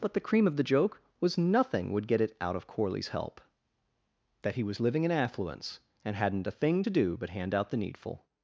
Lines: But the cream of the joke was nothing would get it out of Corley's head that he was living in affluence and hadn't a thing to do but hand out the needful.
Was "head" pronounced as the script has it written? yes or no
no